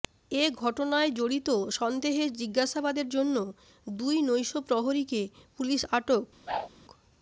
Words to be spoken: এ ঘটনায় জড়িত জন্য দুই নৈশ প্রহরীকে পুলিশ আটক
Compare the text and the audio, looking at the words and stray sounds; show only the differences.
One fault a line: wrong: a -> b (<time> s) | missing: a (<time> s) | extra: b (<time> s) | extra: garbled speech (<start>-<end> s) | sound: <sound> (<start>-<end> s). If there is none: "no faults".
extra: সন্দেহে জিজ্ঞাসাবাদের (1.8 s)
sound: whoosh (6.5-6.7 s)